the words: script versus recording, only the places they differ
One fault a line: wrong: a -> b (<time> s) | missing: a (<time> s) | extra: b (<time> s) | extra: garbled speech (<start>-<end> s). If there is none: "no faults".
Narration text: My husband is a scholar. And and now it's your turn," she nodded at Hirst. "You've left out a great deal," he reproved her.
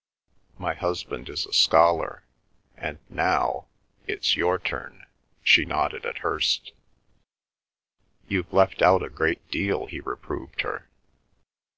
missing: and (3.0 s)